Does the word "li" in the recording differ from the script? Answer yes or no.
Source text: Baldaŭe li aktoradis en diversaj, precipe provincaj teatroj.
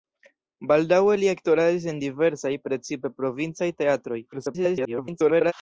no